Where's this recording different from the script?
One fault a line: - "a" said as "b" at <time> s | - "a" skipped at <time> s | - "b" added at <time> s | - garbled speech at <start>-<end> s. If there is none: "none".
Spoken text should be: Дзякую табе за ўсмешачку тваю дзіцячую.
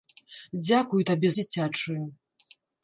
- "за ўсмешачку тваю" skipped at 1.3 s